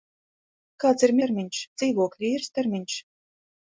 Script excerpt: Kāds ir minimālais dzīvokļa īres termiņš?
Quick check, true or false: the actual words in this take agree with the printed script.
false